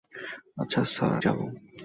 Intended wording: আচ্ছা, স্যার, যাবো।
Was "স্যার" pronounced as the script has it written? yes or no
yes